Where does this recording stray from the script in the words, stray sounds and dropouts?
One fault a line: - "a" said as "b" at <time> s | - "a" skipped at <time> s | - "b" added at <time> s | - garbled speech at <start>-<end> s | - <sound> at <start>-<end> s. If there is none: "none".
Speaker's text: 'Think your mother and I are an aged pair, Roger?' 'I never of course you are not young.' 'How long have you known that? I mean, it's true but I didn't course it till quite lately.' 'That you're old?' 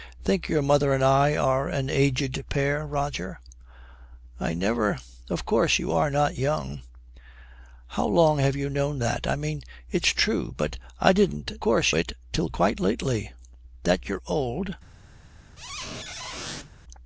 - squeak at 15.6-16.7 s